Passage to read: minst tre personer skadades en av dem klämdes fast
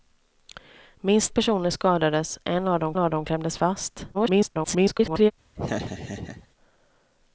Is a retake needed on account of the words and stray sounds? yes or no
yes